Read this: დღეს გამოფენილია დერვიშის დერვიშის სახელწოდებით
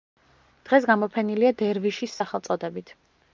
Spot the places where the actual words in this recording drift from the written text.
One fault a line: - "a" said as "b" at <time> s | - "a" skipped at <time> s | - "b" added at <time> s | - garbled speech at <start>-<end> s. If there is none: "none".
- "დერვიშის" skipped at 2.2 s